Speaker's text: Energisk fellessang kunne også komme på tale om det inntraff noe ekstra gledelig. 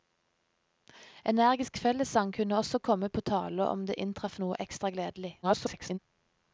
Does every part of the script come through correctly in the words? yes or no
no